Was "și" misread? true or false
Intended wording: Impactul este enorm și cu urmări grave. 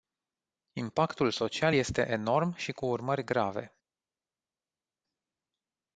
false